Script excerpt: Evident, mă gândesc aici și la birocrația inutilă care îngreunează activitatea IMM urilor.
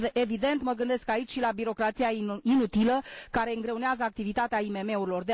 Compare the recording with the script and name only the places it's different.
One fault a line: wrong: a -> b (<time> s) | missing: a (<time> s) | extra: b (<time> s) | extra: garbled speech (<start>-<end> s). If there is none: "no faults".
no faults